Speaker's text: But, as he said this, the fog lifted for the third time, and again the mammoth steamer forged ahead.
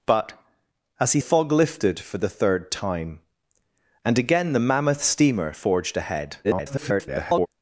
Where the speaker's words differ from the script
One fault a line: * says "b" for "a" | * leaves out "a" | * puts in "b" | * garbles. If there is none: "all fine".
* leaves out "said this the"
* garbles